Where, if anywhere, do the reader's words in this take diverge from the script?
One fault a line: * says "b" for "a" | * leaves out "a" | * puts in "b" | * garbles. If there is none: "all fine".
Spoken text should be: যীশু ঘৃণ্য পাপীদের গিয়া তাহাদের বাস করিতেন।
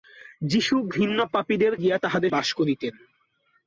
all fine